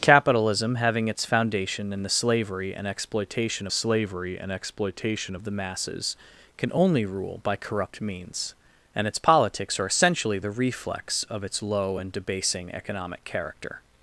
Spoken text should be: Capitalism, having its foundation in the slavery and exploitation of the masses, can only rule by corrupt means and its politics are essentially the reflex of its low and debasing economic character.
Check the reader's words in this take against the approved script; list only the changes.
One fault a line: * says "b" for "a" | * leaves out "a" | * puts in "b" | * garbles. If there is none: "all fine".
* puts in "slavery and exploitation"